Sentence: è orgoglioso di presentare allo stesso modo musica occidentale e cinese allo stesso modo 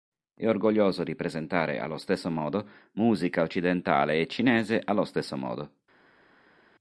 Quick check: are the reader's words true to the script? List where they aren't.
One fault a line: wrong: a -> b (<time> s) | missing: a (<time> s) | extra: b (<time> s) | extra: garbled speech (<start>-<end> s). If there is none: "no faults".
no faults